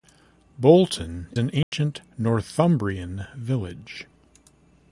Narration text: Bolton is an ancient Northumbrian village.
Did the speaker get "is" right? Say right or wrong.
wrong